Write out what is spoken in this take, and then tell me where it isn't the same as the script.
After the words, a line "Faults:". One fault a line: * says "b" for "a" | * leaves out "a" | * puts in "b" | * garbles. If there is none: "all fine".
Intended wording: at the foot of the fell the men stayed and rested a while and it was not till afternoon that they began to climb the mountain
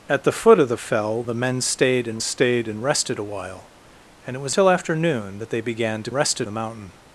at the foot of the fell the men stayed and stayed and rested a while and it was till afternoon that they began to rested the mountain
Faults:
* puts in "stayed and"
* leaves out "not"
* says "rested" for "climb"